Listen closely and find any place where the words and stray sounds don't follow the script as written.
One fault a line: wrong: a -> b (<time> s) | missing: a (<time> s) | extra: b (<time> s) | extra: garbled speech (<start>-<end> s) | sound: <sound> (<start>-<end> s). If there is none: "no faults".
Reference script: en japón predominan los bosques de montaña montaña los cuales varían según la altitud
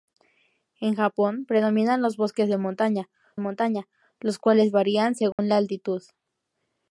sound: dropout (5.3-5.4 s)